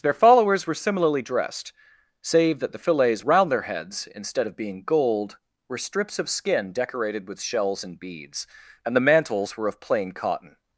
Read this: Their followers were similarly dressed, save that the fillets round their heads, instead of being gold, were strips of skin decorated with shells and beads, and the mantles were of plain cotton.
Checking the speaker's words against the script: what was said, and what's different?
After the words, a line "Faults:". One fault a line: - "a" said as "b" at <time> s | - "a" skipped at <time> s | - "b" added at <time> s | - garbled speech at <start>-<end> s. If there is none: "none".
Their followers were similarly dressed, save that the fillets round their heads, instead of being gold, were strips of skin decorated with shells and beads, and the mantles were of plain cotton.
Faults:
none